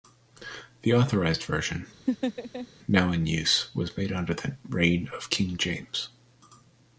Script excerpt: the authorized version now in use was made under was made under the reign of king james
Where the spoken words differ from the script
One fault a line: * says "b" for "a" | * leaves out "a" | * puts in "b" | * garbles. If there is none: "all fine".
* leaves out "was made under"